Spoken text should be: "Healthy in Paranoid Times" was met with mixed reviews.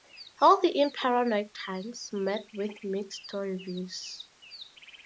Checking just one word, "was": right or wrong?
wrong